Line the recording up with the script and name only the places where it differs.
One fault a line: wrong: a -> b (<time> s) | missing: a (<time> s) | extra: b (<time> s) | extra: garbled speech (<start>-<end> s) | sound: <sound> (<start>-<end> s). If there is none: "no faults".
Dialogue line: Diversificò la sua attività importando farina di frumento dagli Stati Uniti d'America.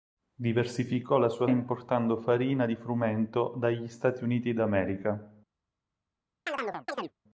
missing: attività (1.4 s)
sound: chirp (6.5-7.1 s)